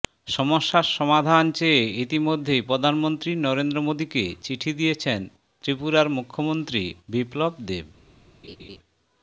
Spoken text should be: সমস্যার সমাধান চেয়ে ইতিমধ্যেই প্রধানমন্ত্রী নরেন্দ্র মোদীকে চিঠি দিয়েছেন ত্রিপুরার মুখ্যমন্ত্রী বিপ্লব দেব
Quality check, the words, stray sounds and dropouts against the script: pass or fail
fail